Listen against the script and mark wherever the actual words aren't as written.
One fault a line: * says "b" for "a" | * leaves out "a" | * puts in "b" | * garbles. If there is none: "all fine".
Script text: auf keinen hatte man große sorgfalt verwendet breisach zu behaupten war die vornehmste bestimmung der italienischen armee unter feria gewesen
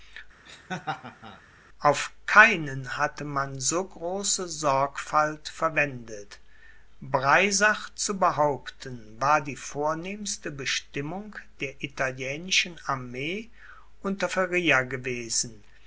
* puts in "so"